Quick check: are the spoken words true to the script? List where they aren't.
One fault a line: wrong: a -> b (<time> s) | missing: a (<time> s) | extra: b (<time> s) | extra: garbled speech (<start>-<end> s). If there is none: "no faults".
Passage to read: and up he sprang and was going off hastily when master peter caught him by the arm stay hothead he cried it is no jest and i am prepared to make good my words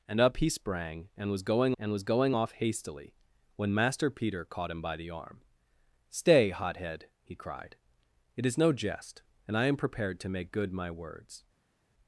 extra: and was going (1.8 s)